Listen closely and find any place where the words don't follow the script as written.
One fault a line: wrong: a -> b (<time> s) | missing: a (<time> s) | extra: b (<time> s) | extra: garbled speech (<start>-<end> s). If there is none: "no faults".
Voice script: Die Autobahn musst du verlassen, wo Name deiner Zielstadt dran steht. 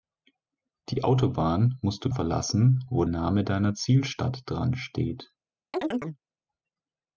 no faults